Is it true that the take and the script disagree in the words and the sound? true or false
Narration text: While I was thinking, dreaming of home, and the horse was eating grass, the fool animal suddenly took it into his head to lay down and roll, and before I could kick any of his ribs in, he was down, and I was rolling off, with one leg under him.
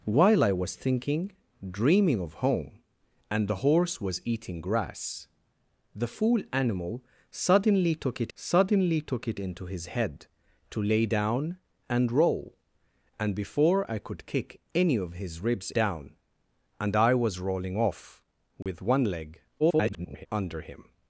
true